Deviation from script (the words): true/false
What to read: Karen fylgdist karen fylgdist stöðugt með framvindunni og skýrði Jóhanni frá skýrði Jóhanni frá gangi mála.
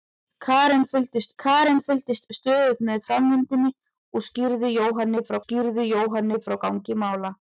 false